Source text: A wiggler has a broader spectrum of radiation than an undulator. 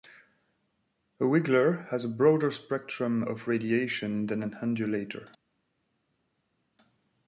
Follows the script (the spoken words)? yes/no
yes